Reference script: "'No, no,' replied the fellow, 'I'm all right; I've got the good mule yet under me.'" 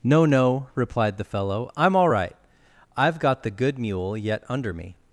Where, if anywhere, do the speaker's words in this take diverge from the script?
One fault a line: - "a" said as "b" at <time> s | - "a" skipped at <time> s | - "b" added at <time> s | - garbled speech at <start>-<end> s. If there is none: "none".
none